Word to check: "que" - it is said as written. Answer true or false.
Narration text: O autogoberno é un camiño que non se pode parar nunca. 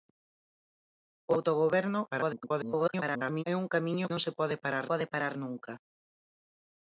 false